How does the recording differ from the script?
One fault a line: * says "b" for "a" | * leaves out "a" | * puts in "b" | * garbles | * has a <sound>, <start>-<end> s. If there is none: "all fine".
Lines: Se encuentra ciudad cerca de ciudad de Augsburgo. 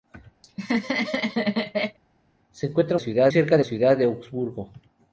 * has a laugh, 0.4-2.0 s